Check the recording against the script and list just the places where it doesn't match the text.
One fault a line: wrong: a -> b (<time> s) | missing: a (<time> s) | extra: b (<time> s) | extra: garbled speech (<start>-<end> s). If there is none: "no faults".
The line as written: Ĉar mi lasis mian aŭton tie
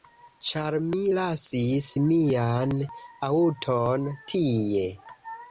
no faults